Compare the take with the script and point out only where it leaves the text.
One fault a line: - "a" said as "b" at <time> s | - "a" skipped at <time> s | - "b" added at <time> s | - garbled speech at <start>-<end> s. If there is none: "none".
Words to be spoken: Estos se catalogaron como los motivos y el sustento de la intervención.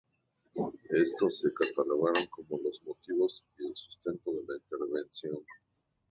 none